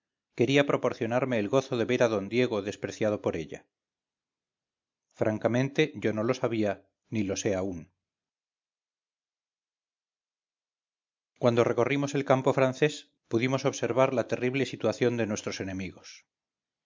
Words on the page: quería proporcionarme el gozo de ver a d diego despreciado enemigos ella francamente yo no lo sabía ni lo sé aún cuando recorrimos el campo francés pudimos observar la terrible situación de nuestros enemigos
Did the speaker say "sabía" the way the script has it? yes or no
yes